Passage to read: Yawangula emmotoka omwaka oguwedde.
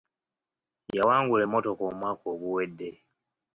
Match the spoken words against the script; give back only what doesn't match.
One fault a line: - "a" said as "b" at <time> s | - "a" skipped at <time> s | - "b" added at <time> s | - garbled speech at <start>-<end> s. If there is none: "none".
none